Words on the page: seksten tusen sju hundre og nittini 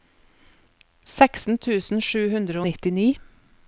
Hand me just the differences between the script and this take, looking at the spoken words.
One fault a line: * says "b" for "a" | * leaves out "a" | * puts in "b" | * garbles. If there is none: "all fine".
all fine